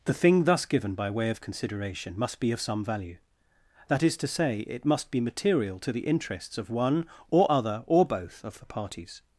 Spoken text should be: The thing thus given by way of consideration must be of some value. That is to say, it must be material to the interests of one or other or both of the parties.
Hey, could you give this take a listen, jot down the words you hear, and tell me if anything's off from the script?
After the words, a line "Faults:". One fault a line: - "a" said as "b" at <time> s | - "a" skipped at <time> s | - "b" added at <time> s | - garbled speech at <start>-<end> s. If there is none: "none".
The thing thus given by way of consideration must be of some value. That is to say, it must be material to the interests of one or other or both of the parties.
Faults:
none